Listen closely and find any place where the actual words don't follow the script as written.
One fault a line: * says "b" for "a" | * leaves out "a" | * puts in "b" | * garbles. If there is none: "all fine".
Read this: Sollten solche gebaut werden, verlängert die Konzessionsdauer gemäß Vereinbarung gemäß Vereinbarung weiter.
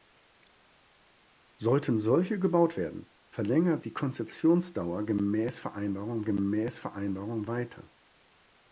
all fine